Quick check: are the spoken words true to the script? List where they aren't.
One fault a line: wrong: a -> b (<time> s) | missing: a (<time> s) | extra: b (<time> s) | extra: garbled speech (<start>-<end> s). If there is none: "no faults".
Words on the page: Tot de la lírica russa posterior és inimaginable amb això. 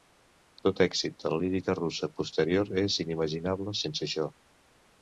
extra: èxit (0.8 s)
wrong: amb -> sense (3.9 s)